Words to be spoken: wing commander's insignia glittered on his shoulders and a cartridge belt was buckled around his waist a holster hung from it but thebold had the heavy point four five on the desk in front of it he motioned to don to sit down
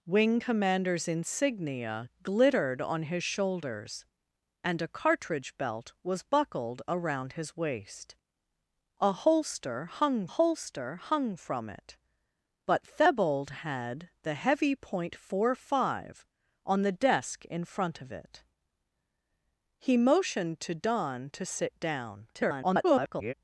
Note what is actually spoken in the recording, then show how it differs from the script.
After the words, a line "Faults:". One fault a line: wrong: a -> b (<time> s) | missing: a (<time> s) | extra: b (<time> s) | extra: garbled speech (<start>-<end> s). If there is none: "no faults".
wing commander's insignia glittered on his shoulders and a cartridge belt was buckled around his waist a holster hung holster hung from it but thebold had the heavy point four five on the desk in front of it he motioned to don to sit down [garbled]
Faults:
extra: holster hung (10.3 s)
extra: garbled speech (22.3-23.3 s)